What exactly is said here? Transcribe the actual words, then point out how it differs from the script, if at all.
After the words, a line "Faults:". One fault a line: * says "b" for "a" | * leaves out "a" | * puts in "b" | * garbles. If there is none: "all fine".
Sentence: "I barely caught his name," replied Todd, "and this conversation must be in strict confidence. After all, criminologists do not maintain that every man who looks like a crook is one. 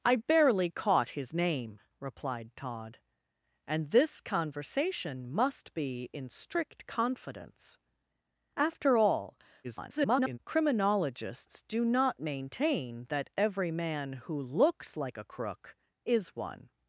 "I barely caught his name," replied Todd, "and this conversation must be in strict confidence. After all, [garbled] criminologists do not maintain that every man who looks like a crook is one.
Faults:
* garbles